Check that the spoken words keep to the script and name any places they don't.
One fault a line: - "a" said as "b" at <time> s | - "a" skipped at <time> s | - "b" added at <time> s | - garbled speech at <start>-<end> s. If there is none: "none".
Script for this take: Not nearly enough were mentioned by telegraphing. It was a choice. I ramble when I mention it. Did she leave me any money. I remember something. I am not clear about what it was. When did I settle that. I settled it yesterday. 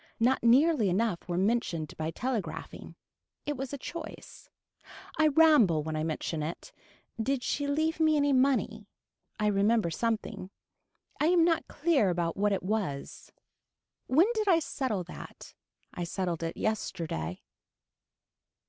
none